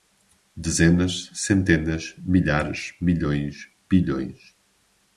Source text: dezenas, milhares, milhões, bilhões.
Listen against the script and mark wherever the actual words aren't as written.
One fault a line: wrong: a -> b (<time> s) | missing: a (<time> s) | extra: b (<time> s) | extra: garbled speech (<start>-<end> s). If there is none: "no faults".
extra: centenas (1.4 s)